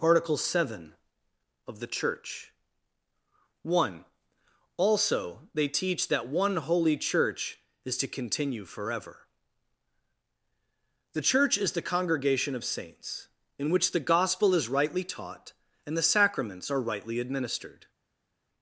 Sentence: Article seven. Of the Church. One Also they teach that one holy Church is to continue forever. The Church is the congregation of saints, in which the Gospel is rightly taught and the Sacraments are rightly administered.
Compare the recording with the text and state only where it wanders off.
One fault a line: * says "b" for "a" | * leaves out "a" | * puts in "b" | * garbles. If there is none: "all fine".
all fine